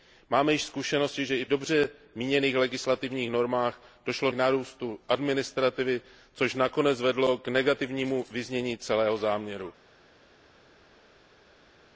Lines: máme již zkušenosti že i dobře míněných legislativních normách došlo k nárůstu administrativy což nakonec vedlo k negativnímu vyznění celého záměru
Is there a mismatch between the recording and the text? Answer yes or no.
no